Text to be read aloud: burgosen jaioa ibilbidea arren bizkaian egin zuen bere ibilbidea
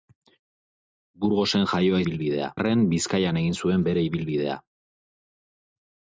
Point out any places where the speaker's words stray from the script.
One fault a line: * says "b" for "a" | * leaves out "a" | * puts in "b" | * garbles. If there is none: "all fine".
all fine